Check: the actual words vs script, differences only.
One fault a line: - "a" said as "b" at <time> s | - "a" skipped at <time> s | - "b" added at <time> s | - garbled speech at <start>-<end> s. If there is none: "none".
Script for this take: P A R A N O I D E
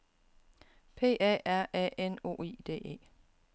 none